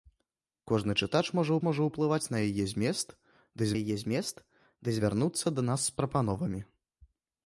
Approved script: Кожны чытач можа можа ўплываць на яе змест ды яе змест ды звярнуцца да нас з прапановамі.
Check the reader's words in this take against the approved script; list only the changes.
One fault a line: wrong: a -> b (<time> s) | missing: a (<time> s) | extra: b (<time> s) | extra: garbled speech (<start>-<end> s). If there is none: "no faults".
no faults